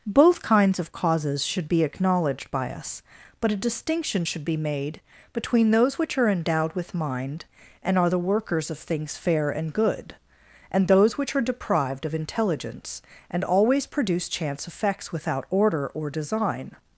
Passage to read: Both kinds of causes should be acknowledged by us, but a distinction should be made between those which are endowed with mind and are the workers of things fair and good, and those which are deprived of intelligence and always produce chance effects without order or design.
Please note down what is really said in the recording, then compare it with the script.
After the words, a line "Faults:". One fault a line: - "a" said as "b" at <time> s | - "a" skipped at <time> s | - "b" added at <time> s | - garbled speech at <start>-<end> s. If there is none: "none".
Both kinds of causes should be acknowledged by us, but a distinction should be made between those which are endowed with mind and are the workers of things fair and good, and those which are deprived of intelligence and always produce chance effects without order or design.
Faults:
none